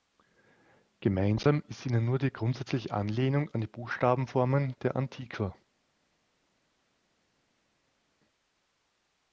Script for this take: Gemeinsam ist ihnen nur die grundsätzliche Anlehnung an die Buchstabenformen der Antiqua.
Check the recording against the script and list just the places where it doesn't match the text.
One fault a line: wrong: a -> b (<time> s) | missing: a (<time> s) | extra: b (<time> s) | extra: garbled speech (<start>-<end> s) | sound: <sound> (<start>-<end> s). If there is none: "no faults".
no faults